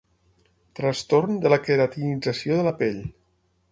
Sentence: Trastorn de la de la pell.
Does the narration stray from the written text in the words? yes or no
yes